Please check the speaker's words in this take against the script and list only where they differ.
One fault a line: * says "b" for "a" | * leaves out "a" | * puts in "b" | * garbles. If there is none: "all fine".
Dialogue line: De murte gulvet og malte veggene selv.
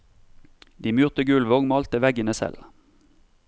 all fine